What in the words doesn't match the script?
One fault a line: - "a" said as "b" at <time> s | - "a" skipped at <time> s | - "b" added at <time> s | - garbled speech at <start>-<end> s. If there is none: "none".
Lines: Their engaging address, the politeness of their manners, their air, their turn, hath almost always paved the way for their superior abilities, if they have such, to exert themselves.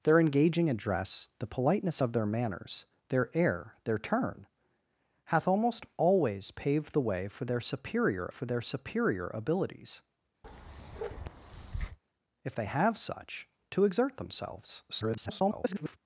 - "for their superior" added at 8.3 s
- garbled speech at 14.9-16.0 s